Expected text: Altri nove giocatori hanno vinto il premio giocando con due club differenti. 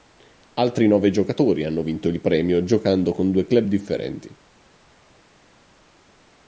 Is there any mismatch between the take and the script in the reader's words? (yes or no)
no